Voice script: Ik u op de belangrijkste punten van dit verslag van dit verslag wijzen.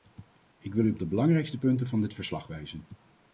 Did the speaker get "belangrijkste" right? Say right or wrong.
right